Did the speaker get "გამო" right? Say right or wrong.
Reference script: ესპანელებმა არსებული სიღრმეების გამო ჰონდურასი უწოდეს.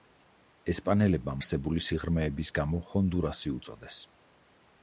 right